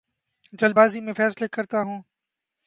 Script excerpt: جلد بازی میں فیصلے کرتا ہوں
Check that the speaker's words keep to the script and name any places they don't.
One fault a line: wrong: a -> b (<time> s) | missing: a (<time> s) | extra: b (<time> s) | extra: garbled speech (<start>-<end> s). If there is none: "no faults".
no faults